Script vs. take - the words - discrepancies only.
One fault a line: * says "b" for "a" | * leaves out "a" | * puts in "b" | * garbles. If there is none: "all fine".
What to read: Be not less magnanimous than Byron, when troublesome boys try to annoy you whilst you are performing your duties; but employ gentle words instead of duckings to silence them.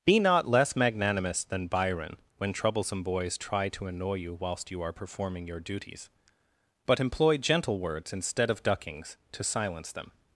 all fine